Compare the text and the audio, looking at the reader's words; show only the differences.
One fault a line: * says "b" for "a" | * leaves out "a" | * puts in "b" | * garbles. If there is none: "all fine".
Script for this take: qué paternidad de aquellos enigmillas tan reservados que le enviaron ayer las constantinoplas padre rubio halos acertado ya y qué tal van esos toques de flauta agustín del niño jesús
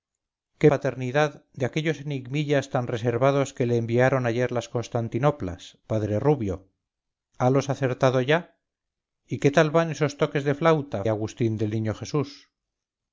all fine